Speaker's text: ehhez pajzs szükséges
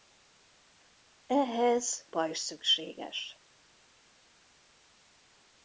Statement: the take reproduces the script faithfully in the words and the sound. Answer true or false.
true